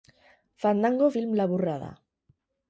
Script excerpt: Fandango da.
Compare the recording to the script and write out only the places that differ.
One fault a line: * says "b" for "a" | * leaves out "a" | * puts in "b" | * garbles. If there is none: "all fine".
* puts in "film laburra"